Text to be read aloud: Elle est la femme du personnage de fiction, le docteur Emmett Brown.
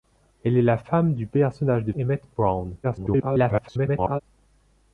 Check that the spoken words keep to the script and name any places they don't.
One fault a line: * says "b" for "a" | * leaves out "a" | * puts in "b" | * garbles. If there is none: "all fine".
* leaves out "fiction le docteur"
* garbles